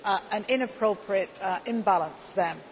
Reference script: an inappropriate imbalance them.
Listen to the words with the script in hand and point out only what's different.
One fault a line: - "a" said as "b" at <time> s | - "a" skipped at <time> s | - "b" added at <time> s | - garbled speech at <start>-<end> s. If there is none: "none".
none